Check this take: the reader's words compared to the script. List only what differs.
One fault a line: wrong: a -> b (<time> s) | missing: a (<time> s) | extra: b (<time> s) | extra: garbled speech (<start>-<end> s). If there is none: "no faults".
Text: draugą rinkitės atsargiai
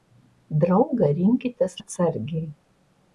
no faults